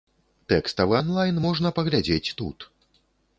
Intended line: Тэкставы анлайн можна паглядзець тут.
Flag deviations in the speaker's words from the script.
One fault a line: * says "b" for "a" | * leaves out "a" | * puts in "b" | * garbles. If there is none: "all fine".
all fine